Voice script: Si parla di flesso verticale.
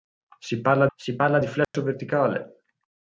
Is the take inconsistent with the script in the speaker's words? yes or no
yes